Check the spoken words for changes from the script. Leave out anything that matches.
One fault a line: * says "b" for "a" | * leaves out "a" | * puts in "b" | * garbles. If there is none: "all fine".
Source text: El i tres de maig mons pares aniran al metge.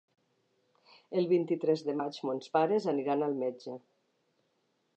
* puts in "vint"